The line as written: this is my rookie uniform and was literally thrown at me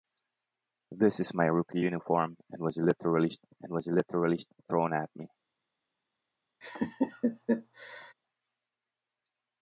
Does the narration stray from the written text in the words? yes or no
yes